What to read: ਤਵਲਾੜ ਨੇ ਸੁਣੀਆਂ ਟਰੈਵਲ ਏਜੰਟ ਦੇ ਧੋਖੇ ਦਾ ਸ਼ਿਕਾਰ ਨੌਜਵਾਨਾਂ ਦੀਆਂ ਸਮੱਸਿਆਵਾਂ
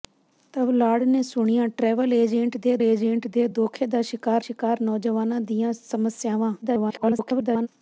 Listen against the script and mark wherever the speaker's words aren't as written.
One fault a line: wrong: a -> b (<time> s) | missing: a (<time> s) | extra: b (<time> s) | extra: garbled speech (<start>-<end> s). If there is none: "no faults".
extra: ਏਜੰਟ ਦੇ (2.8 s)
extra: ਸ਼ਿਕਾਰ (4.4 s)
extra: garbled speech (6.6-7.7 s)